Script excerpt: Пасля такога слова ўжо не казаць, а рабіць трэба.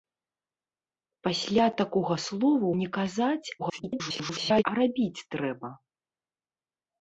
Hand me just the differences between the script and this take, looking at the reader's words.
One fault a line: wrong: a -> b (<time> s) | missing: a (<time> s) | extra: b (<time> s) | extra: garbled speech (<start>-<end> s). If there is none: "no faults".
missing: ўжо (2.7 s)
extra: garbled speech (3.6-4.6 s)